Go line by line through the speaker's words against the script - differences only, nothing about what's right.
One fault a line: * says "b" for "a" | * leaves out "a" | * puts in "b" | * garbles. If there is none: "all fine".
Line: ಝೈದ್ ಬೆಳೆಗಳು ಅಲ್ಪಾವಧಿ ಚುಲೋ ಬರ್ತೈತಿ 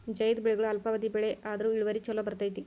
* puts in "ಬೆಳೆ ಆದ್ರು ಇಳುವರಿ"